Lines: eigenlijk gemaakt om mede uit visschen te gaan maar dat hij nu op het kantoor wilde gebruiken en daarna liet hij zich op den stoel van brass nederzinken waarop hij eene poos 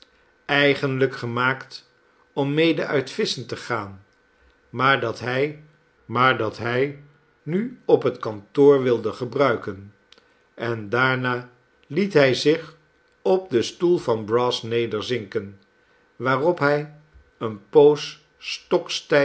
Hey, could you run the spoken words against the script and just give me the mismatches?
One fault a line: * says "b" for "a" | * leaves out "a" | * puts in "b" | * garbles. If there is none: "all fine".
* puts in "maar dat hij"